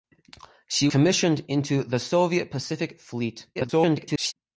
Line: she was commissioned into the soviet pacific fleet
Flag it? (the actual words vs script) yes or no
yes